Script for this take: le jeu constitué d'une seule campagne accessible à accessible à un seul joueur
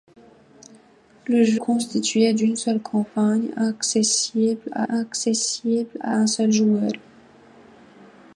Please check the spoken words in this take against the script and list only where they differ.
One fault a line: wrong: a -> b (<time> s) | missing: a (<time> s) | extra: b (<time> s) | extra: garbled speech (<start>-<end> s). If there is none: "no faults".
no faults